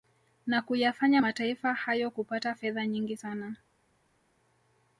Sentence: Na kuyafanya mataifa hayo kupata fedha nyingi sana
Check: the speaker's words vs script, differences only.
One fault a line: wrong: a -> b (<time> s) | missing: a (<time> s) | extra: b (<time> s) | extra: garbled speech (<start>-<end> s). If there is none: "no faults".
no faults